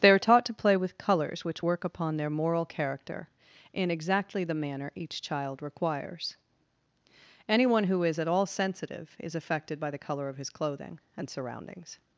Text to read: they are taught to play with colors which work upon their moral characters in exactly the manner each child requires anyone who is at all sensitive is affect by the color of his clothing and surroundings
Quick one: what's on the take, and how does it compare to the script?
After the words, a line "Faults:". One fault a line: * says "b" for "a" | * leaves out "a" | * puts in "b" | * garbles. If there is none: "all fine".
they are taught to play with colors which work upon their moral character in exactly the manner each child requires anyone who is at all sensitive is affected by the color of his clothing and surroundings
Faults:
* says "character" for "characters"
* says "affected" for "affect"